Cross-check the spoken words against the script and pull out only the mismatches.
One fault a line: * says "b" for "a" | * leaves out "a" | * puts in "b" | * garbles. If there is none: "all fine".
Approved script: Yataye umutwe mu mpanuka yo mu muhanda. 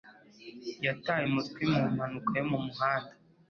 all fine